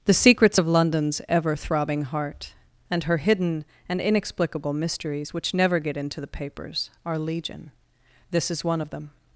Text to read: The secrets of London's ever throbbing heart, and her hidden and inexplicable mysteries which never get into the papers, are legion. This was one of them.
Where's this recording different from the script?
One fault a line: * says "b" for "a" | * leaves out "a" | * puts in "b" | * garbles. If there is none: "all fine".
* says "is" for "was"